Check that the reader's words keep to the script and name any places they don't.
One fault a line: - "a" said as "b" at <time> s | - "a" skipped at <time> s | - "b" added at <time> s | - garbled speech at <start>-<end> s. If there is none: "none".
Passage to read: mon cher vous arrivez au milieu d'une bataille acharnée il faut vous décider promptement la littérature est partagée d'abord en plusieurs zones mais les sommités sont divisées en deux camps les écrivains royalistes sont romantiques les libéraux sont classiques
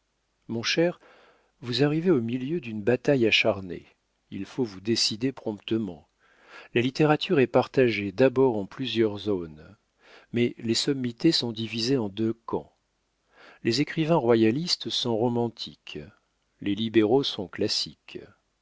none